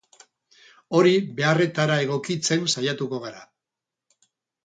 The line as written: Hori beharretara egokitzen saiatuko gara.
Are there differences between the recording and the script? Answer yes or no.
no